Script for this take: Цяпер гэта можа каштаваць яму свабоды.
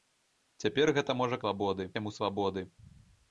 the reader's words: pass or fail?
fail